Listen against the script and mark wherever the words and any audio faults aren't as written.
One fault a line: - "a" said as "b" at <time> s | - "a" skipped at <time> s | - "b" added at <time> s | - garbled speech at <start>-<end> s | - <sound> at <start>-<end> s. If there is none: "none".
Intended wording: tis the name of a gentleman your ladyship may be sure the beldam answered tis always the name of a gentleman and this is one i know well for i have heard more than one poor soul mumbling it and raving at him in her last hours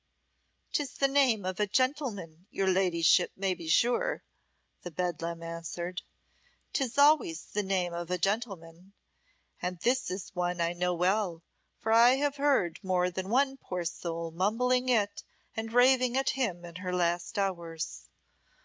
none